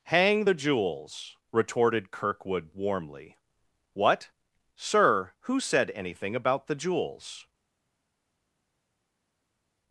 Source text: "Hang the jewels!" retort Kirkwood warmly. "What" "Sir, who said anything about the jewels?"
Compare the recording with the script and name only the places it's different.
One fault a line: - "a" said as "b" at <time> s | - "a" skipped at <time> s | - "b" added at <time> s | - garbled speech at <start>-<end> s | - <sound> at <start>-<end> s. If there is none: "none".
- "retort" said as "retorted" at 1.5 s